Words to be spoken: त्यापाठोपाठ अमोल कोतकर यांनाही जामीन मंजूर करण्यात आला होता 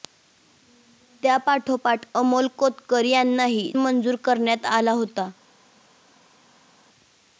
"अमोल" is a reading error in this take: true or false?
false